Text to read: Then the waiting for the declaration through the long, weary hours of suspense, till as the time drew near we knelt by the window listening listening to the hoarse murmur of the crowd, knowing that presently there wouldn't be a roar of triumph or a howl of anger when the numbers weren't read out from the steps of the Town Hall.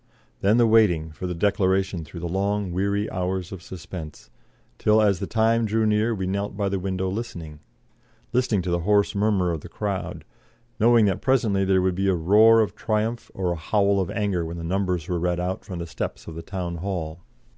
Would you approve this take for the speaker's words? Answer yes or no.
no